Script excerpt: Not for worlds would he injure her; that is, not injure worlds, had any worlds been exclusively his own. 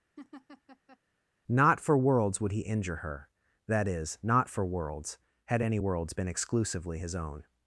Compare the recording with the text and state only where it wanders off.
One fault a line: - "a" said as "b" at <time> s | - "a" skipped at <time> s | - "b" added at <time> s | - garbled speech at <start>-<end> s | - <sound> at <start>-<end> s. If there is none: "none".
- laugh at 0.2-1.0 s
- "injure" said as "for" at 4.5 s